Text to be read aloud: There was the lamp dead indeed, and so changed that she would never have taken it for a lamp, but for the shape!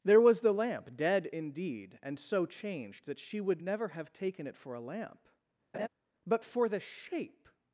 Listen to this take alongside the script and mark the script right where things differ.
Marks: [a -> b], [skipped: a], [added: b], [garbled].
There was the lamp dead indeed, and so changed that she would never have taken it for a lamp, but for the shape!